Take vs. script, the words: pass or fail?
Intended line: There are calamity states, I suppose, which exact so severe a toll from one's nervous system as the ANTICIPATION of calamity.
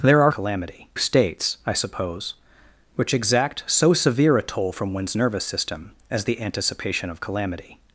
pass